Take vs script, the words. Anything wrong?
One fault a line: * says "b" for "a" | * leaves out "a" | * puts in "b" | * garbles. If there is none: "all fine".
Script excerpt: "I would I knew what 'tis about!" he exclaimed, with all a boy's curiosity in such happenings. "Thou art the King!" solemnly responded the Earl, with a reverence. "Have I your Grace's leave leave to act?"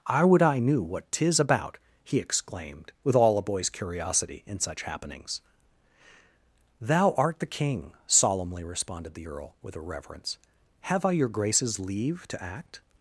* leaves out "leave"